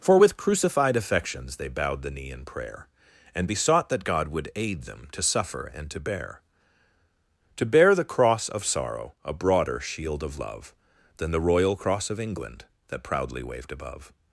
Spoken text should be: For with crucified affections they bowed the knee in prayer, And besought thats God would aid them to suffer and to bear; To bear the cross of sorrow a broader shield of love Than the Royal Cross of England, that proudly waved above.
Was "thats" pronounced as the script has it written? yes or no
no